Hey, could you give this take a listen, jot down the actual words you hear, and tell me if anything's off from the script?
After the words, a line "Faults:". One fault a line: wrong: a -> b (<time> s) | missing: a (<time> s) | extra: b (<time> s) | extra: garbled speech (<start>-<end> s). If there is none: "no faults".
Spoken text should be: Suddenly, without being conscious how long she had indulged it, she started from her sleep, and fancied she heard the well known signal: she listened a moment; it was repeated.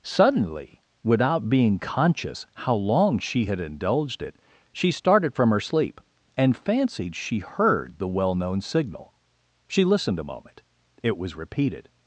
Suddenly, without being conscious how long she had indulged it, she started from her sleep, and fancied she heard the well known signal: she listened a moment; it was repeated.
Faults:
no faults